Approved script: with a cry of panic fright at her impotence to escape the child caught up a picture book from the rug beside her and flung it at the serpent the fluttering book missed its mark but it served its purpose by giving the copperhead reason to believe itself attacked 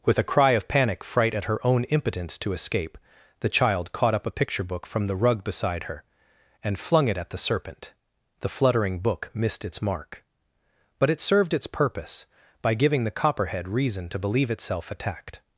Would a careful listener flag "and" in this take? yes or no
no